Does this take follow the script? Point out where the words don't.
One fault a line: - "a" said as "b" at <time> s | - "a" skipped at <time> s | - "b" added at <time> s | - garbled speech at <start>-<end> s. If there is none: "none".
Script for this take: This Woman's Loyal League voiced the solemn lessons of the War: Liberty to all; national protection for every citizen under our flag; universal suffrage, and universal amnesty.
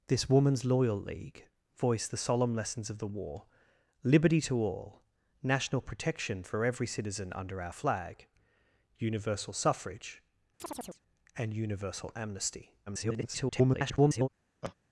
- garbled speech at 12.9-14.3 s